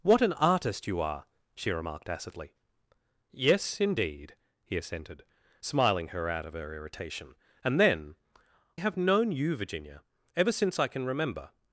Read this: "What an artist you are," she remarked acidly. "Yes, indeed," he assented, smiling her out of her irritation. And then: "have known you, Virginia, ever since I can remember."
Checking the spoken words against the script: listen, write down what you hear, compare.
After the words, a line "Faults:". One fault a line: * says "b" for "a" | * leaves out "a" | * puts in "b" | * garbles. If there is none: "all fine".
"What an artist you are," she remarked acidly. "Yes, indeed," he assented, smiling her out of her irritation. And then: "have known you, Virginia, ever since I can remember."
Faults:
all fine